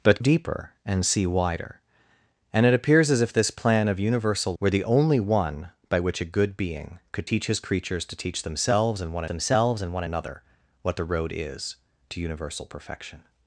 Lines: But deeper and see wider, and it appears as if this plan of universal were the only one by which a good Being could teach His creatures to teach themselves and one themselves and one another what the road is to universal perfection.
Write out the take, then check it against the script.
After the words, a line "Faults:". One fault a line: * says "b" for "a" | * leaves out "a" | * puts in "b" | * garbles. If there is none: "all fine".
But deeper and see wider, and it appears as if this plan of universal were the only one by which a good Being could teach His creatures to teach themselves and one themselves and one another what the road is to universal perfection.
Faults:
all fine